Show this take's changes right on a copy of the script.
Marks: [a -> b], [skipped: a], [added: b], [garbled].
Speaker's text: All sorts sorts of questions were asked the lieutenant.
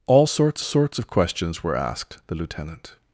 All sorts sorts of questions were asked the lieutenant.